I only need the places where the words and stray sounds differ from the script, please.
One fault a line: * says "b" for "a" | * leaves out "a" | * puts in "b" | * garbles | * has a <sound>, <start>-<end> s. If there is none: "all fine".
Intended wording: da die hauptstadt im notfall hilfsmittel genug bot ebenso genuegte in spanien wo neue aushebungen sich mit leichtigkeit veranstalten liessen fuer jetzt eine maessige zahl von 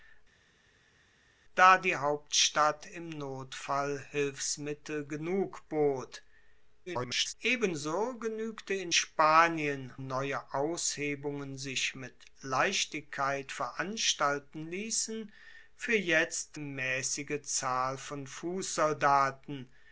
* garbles
* leaves out "wo"
* leaves out "eine"